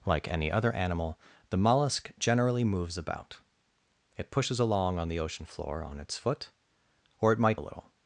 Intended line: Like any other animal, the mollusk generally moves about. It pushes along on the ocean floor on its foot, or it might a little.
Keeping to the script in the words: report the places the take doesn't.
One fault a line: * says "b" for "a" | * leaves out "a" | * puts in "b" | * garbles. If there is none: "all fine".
all fine